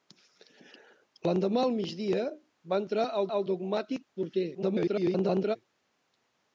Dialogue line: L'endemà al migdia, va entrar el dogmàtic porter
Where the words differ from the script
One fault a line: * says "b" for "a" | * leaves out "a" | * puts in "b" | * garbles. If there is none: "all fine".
* puts in "el"
* garbles